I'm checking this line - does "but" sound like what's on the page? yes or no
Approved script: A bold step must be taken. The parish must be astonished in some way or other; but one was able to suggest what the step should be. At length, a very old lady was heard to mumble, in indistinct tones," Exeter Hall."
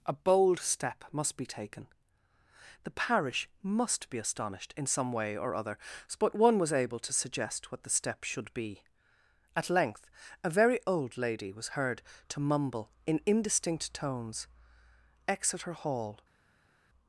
yes